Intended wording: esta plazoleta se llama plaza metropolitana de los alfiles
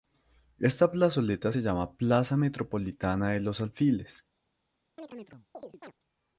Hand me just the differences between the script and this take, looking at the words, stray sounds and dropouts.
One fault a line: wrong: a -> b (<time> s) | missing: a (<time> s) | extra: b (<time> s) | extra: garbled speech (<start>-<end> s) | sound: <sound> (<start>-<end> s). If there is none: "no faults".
sound: chirp (5.0-5.9 s)